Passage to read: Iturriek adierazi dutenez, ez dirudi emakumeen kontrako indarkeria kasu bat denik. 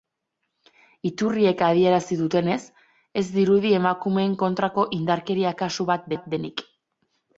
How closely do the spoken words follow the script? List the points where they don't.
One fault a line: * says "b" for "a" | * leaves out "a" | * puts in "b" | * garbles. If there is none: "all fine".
* puts in "bat"